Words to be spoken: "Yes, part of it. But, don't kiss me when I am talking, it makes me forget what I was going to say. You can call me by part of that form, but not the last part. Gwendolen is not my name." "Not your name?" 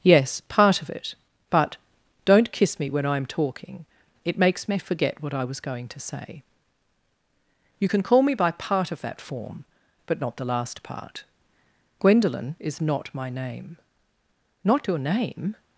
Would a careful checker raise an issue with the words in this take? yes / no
no